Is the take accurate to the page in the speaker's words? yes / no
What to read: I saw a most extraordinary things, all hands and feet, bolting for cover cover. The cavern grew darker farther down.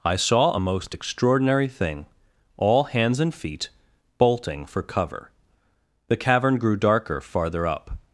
no